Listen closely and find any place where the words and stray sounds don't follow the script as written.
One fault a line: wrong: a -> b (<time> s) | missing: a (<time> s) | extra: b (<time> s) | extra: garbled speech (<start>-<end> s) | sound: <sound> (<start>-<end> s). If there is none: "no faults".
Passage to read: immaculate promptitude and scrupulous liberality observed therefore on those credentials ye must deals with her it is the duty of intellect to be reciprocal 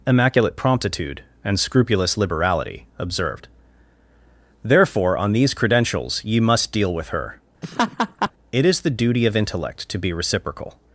wrong: those -> these (5.3 s)
wrong: deals -> deal (6.7 s)
sound: laugh (7.6-8.3 s)